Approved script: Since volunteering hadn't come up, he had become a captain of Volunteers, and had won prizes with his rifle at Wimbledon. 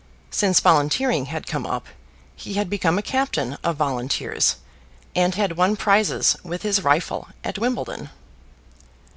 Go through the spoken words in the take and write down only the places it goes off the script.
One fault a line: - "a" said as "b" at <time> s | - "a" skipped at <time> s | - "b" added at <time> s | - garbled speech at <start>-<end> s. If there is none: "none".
- "hadn't" said as "had" at 1.3 s